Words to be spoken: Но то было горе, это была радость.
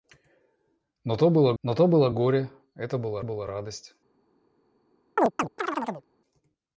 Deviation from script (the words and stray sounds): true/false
true